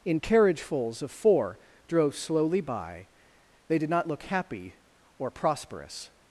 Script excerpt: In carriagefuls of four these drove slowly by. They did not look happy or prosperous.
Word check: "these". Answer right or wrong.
wrong